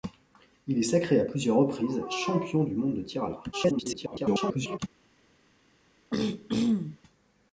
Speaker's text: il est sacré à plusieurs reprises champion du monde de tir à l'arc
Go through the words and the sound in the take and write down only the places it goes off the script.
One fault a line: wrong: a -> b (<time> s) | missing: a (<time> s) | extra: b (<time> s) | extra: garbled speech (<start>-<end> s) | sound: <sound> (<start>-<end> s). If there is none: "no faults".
extra: garbled speech (3.5-4.8 s)
sound: throat clearing (6.1-7.0 s)